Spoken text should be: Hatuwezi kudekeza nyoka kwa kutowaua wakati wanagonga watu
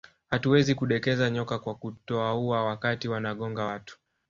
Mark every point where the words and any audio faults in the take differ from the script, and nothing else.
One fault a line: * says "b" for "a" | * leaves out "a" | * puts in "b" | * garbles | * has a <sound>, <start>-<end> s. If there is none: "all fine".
all fine